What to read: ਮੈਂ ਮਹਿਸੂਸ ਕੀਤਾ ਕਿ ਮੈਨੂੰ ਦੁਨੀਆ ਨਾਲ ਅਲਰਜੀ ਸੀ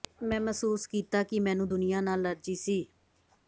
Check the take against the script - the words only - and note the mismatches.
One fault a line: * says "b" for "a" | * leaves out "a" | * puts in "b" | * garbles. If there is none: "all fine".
all fine